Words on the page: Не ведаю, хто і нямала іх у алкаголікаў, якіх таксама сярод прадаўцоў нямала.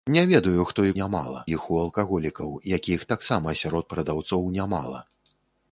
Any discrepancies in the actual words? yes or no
no